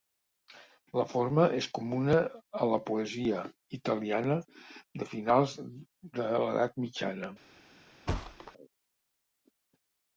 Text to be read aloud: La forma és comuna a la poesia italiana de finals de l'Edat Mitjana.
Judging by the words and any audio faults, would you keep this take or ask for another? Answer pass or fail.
fail